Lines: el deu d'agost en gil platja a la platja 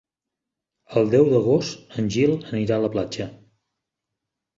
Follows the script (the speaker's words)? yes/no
no